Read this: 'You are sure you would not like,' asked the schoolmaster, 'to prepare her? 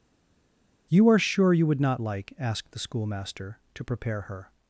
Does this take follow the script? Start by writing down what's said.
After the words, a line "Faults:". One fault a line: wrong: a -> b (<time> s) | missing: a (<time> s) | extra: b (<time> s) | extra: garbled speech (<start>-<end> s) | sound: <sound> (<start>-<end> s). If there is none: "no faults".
'You are sure you would not like,' asked the schoolmaster, 'to prepare her?
Faults:
no faults